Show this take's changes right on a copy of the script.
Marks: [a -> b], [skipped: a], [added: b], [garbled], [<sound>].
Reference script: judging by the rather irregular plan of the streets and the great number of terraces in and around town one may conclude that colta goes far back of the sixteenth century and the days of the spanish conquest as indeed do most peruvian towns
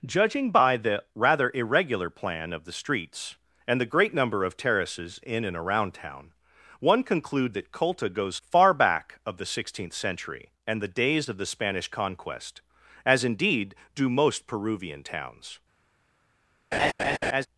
judging by the rather irregular plan of the streets and the great number of terraces in and around town one [skipped: may] conclude that colta goes far back of the sixteenth century and the days of the spanish conquest as indeed do most peruvian towns [laugh]